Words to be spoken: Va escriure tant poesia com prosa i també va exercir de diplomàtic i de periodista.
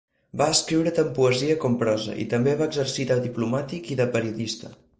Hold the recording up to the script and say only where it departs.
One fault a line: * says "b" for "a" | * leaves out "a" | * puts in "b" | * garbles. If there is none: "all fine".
all fine